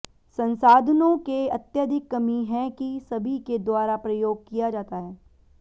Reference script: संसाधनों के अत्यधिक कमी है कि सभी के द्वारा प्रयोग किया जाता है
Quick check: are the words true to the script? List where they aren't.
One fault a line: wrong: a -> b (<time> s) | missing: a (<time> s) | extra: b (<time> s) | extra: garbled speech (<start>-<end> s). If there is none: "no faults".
no faults